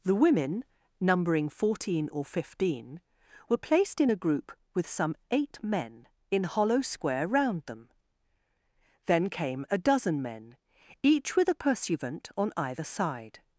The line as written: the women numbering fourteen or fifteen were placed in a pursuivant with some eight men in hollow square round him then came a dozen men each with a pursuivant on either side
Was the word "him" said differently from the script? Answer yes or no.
yes